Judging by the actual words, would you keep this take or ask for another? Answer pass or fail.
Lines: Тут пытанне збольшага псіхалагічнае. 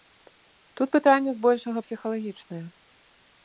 pass